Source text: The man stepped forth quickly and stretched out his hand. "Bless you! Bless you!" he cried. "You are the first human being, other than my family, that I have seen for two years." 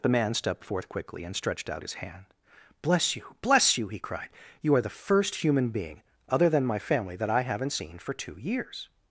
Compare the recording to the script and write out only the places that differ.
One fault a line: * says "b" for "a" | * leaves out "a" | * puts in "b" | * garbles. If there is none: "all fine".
* says "haven't" for "have"